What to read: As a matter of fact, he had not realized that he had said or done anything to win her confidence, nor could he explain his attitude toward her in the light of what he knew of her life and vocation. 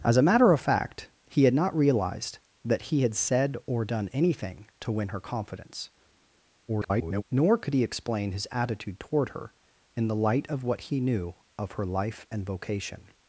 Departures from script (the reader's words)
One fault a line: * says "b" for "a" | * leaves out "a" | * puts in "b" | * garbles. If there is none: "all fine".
* garbles